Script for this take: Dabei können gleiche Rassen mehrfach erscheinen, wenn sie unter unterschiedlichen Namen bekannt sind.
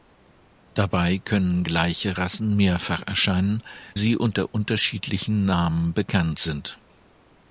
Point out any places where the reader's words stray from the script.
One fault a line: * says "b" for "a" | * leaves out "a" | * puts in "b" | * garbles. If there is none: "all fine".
* leaves out "wenn"